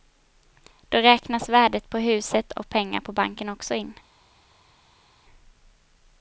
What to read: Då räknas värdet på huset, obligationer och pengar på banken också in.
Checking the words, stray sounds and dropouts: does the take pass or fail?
fail